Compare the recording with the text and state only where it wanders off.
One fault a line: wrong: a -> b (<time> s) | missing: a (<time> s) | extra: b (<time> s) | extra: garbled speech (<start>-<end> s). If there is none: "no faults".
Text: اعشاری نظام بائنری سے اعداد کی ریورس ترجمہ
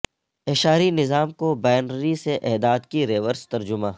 extra: کو (1.3 s)